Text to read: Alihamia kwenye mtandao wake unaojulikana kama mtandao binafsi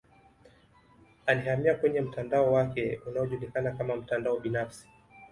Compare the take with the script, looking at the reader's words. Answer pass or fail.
pass